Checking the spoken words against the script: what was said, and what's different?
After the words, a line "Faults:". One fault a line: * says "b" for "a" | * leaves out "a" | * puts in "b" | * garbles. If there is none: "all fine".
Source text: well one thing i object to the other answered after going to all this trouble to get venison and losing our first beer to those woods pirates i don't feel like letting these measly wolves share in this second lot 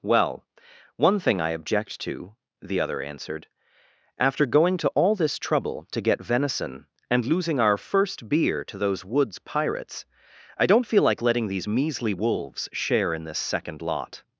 well one thing i object to the other answered after going to all this trouble to get venison and losing our first beer to those woods pirates i don't feel like letting these measly wolves share in this second lot
Faults:
all fine